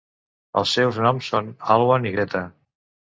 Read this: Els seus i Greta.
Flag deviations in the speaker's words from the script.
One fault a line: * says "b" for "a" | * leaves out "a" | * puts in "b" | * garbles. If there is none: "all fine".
* puts in "noms són Alwan"